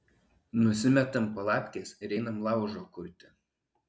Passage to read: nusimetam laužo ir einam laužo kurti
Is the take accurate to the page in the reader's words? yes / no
no